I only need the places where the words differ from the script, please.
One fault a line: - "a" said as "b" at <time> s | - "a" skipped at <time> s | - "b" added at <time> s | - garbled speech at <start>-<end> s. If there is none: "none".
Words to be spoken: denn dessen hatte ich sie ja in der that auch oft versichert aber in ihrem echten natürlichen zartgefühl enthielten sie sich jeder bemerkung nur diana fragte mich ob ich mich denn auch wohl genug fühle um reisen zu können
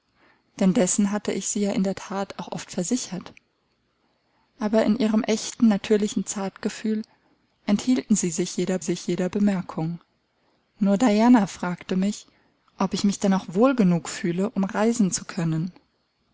- "sich jeder" added at 8.8 s